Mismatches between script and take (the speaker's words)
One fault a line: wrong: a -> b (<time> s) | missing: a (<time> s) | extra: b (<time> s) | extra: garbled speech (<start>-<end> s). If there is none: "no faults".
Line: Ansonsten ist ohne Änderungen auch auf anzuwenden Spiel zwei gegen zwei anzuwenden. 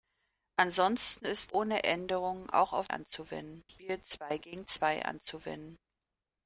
no faults